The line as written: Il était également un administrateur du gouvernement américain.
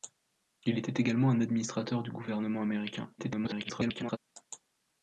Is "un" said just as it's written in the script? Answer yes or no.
yes